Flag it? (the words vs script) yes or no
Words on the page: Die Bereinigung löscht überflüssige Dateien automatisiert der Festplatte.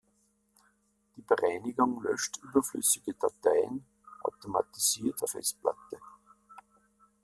no